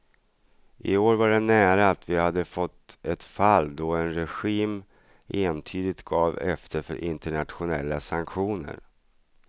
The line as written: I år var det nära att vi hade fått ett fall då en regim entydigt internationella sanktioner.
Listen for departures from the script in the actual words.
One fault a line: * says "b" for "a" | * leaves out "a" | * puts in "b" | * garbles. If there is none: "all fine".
* puts in "gav efter för"